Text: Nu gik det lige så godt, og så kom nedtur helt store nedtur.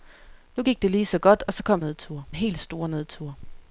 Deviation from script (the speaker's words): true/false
false